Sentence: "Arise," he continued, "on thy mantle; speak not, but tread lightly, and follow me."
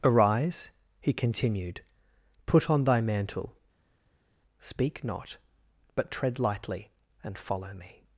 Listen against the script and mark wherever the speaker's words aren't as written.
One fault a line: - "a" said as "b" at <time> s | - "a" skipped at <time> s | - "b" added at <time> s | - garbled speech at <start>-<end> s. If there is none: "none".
- "put" added at 2.5 s